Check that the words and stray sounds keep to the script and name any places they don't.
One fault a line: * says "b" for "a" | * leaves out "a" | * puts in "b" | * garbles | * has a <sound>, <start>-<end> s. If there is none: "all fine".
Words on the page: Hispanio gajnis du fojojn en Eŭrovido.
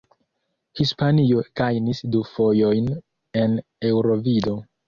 all fine